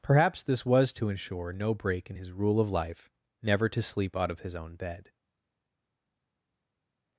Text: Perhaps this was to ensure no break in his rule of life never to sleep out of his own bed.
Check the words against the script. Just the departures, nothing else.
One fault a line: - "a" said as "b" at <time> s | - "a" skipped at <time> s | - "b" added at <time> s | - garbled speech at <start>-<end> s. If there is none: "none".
none